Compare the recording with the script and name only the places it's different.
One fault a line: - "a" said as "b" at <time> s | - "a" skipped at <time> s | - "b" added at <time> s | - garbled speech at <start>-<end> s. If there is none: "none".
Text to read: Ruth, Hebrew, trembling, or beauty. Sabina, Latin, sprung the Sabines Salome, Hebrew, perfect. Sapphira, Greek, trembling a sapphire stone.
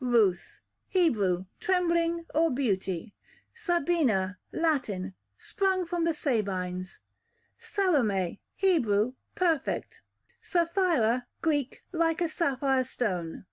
- "from" added at 5.8 s
- "trembling" said as "like" at 11.9 s